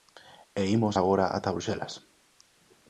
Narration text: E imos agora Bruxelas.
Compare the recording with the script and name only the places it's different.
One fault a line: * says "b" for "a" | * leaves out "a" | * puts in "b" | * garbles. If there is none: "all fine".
* puts in "ata"